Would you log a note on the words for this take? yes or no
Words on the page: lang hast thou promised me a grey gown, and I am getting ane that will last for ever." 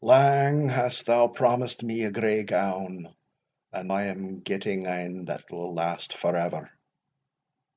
no